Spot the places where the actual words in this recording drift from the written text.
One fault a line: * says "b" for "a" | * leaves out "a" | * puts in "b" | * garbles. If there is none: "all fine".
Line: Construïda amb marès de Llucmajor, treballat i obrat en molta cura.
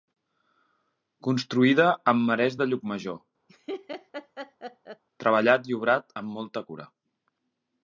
* says "amb" for "en"